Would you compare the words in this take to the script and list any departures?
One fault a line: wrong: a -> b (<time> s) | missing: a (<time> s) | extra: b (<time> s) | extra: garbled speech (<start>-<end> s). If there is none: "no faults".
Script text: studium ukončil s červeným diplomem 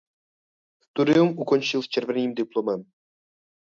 no faults